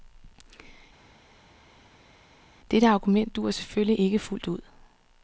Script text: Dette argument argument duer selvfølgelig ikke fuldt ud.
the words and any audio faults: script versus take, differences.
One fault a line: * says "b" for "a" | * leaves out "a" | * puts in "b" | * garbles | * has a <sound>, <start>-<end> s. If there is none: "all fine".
* leaves out "argument"